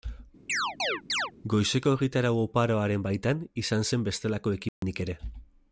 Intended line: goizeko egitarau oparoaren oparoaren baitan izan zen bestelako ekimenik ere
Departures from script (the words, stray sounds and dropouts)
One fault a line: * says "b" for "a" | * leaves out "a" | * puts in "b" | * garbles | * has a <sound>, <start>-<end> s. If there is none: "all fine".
* has a chirp, 0.5-1.3 s
* leaves out "oparoaren"
* has a dropout, 4.7-4.8 s